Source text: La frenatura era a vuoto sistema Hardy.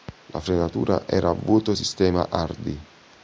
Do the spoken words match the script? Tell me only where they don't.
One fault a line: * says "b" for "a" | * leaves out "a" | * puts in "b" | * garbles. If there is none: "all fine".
all fine